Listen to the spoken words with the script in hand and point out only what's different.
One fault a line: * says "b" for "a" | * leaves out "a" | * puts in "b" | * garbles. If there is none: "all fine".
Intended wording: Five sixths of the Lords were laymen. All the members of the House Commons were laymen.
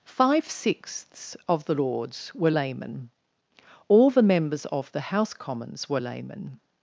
all fine